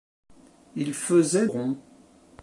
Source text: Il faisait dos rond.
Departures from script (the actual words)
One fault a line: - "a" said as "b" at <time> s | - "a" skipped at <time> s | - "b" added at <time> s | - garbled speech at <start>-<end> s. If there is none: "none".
- "dos" skipped at 1.5 s